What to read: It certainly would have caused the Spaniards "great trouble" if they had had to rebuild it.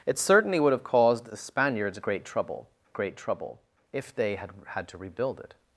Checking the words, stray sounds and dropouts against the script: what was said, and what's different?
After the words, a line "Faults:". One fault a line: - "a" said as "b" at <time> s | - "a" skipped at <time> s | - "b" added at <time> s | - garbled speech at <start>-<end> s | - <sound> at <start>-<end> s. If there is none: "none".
It certainly would have caused the Spaniards "great trouble great trouble" if they had had to rebuild it.
Faults:
- "great trouble" added at 2.9 s